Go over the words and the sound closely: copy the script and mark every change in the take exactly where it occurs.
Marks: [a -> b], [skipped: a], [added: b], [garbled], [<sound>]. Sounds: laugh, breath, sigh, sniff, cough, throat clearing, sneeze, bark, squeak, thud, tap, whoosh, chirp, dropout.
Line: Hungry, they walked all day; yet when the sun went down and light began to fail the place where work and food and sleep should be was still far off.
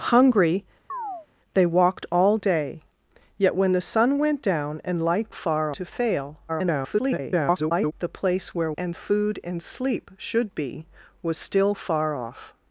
Hungry, [chirp] they walked all day; yet when the sun went down and light [began -> far] to fail [garbled] the place where [skipped: work] and food and sleep should be was still far off.